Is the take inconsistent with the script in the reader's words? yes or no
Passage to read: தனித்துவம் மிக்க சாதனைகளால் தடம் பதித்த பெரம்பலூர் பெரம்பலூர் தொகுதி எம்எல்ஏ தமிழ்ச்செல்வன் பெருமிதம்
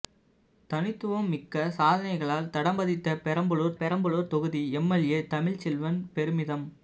no